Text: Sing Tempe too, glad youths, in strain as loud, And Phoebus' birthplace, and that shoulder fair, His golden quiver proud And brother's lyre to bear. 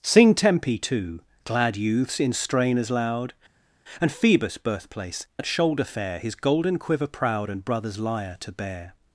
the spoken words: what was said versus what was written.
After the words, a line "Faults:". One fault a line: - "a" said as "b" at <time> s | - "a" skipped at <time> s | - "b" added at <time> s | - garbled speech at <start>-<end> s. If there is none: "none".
Sing Tempe too, glad youths, in strain as loud, And Phoebus' birthplace, that shoulder fair, His golden quiver proud And brother's lyre to bear.
Faults:
- "and" skipped at 5.3 s